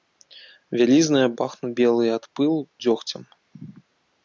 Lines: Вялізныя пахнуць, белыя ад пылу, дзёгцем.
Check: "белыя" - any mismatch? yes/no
no